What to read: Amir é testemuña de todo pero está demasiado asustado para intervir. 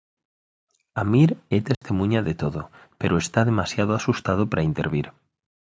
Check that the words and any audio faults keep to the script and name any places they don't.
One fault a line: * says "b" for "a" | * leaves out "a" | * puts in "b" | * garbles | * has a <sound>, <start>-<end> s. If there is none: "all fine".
* has a dropout, 1.7-1.8 s